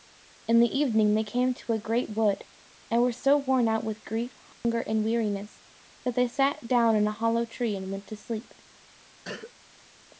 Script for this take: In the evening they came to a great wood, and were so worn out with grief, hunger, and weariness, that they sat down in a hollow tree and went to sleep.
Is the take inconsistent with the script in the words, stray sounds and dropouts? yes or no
yes